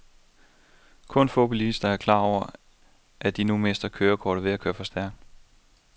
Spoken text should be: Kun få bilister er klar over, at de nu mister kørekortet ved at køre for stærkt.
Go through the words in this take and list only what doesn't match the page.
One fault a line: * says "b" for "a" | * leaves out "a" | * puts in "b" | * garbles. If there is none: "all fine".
all fine